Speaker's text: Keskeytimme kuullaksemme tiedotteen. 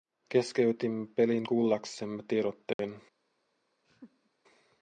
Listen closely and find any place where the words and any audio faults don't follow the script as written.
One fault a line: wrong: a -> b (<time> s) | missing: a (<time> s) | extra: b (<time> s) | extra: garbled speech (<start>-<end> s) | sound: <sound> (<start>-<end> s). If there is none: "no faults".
extra: pelin (1.1 s)
sound: dropout (2.7-2.8 s)
sound: laugh (3.8-4.3 s)